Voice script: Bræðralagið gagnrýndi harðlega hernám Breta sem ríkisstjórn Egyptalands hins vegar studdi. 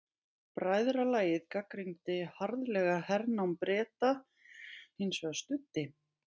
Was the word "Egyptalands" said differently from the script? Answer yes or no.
yes